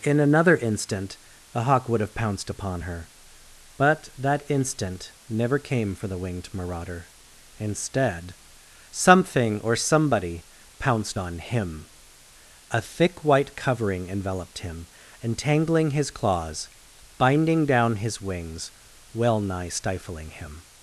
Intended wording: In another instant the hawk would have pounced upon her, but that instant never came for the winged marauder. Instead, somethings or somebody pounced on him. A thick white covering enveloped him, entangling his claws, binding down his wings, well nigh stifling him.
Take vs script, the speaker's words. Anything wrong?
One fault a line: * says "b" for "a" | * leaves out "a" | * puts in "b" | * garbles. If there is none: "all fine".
* says "something" for "somethings"